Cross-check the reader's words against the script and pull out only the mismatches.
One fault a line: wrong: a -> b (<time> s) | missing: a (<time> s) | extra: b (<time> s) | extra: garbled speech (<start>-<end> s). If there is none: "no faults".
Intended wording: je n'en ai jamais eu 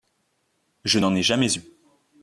no faults